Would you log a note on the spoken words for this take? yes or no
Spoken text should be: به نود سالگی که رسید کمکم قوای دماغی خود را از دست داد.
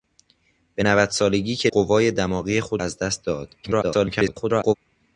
yes